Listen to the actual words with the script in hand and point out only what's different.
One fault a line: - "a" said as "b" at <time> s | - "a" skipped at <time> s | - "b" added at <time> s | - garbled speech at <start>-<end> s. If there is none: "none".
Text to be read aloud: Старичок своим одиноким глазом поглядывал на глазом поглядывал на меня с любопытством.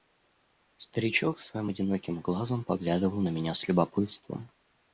- "глазом поглядывал на" skipped at 3.3 s